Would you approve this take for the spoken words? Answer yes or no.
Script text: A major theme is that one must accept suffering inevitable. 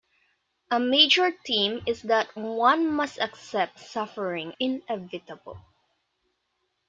yes